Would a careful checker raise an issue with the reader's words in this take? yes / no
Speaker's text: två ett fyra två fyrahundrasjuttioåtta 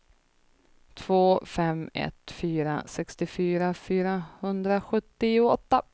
yes